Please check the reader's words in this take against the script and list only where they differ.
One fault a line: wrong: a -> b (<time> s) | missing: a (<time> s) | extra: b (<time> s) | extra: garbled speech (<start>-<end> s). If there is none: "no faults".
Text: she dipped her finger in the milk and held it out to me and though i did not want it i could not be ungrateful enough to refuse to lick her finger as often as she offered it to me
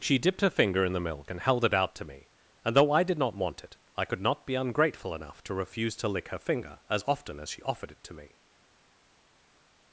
no faults